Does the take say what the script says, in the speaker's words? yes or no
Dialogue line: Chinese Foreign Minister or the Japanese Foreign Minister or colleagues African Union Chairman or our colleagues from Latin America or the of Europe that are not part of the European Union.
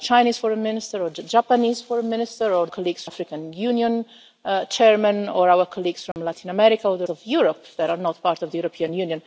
yes